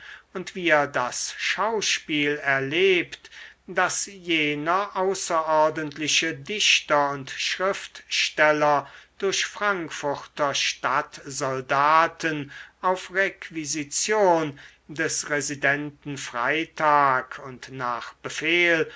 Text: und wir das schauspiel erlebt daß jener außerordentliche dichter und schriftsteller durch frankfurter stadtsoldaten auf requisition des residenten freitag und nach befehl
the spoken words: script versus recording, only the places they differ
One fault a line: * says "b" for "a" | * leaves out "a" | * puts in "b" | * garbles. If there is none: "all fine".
all fine